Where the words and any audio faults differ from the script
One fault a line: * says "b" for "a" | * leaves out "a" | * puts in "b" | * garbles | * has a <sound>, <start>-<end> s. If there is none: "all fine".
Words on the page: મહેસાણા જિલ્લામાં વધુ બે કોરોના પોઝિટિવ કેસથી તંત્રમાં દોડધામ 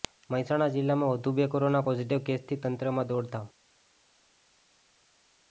all fine